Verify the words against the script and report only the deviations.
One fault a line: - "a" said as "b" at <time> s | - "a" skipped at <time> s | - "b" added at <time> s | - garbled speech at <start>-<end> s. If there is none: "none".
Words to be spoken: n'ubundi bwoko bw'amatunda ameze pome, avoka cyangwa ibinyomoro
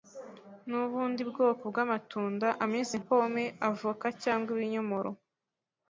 none